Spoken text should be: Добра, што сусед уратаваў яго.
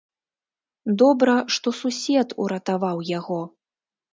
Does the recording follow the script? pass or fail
pass